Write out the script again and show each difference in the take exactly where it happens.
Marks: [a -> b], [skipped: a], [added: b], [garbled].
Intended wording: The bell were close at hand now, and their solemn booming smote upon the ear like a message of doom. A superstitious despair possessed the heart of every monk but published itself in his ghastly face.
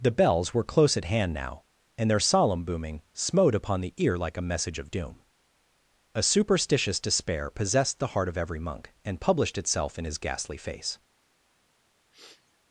The [bell -> bells] were close at hand now, and their solemn booming smote upon the ear like a message of doom. A superstitious despair possessed the heart of every monk [but -> and] published itself in his ghastly face.